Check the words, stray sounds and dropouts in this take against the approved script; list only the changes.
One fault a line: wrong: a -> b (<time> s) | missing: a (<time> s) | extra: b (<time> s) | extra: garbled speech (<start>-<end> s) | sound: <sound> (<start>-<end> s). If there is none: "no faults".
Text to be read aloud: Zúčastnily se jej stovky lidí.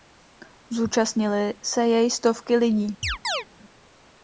sound: chirp (3.0-3.5 s)